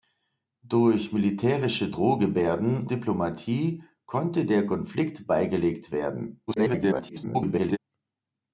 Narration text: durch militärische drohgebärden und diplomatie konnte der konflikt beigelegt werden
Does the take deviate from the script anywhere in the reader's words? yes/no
yes